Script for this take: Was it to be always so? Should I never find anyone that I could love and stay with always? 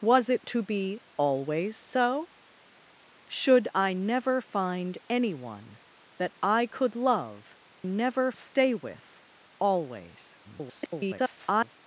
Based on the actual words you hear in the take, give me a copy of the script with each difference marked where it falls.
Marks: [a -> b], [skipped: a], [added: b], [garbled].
Was it to be always so? Should I never find anyone that I could love [and -> never] stay with always? [garbled]